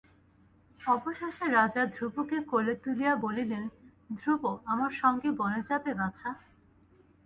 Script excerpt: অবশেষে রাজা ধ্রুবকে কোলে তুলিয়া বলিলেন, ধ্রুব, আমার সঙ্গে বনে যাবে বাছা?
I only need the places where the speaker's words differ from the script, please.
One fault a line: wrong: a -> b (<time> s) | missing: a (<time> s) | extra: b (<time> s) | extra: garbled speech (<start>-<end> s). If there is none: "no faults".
no faults